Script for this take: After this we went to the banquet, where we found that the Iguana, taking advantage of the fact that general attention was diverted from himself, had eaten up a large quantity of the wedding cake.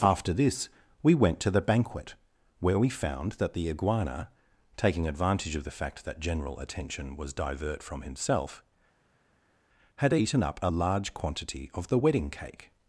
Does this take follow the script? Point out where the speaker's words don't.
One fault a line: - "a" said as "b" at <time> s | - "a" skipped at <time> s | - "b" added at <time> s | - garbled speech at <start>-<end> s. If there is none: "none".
- "diverted" said as "divert" at 7.3 s